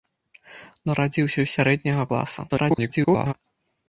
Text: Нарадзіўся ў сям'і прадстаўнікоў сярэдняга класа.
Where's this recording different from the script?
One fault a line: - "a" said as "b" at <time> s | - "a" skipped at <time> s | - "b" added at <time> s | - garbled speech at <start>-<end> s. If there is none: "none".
- "сям'і прадстаўнікоў" skipped at 1.5 s
- garbled speech at 2.5-3.3 s